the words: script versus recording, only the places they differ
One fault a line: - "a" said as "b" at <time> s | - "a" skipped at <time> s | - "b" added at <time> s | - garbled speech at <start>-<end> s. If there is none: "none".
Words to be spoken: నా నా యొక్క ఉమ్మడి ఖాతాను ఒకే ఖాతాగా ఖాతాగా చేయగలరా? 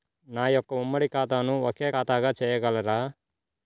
- "నా" skipped at 0.5 s
- "ఖాతాగా" skipped at 2.3 s